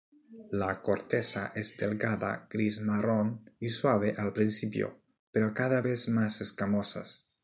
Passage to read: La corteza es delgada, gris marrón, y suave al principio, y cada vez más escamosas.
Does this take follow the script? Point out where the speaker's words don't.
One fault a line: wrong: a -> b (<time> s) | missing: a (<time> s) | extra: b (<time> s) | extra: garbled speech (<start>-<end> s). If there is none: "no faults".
wrong: y -> pero (5.3 s)